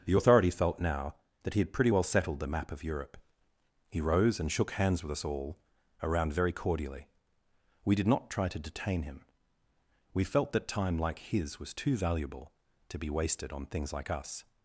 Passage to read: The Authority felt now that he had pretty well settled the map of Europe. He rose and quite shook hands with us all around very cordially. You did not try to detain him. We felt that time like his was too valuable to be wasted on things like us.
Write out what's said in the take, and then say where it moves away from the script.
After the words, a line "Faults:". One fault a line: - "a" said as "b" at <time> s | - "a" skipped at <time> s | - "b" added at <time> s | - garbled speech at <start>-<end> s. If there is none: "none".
The Authority felt now that he had pretty well settled the map of Europe. He rose and shook hands with us all around very cordially. We did not try to detain him. We felt that time like his was too valuable to be wasted on things like us.
Faults:
- "quite" skipped at 4.5 s
- "You" said as "We" at 7.8 s